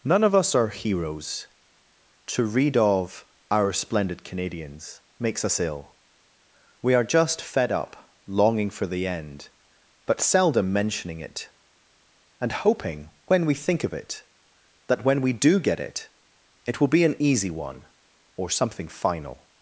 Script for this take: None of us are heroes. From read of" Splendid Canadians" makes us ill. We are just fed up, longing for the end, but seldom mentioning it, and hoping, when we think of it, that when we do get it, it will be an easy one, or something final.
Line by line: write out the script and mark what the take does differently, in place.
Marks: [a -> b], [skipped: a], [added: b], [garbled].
None of us are heroes. [From -> To] read of" [added: Our] Splendid Canadians" makes us ill. We are just fed up, longing for the end, but seldom mentioning it, and hoping, when we think of it, that when we do get it, it will be an easy one, or something final.